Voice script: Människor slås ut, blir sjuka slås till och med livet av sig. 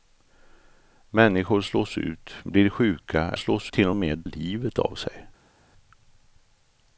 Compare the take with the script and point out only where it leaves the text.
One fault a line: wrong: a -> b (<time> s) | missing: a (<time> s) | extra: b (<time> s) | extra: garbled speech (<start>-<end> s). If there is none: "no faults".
no faults